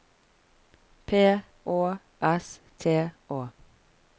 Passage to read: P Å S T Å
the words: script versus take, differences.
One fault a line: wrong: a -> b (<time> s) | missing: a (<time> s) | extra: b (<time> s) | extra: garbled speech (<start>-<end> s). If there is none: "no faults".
no faults